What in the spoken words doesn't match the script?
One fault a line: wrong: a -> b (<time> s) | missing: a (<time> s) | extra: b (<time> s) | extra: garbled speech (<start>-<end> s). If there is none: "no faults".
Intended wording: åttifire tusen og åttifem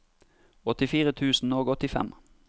no faults